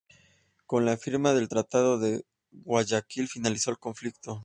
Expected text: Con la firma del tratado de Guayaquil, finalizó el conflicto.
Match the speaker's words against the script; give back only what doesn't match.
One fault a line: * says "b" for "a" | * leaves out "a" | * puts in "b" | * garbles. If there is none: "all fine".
all fine